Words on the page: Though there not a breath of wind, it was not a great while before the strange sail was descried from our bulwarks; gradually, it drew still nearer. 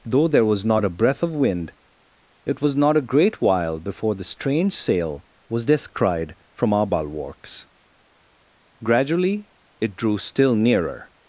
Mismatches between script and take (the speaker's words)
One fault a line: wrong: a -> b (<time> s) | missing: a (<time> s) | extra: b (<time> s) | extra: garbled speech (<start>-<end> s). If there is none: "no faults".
extra: was (0.5 s)